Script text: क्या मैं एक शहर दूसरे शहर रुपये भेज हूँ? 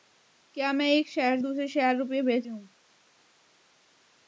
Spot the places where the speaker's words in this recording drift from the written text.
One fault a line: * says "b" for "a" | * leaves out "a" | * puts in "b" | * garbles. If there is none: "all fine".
all fine